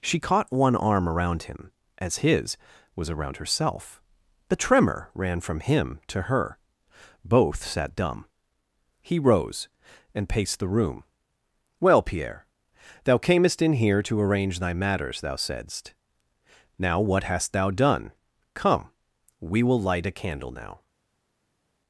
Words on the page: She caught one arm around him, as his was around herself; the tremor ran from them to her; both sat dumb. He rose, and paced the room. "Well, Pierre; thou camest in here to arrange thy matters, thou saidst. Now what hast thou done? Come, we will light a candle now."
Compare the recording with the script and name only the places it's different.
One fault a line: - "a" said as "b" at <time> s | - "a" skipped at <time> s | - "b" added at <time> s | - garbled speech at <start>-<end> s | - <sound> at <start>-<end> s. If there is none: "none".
- "them" said as "him" at 5.6 s